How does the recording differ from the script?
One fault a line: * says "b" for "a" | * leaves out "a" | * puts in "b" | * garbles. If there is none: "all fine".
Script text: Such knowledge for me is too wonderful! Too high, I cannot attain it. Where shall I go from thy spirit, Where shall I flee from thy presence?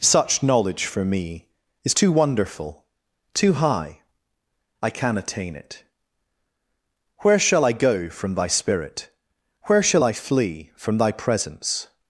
* says "can" for "cannot"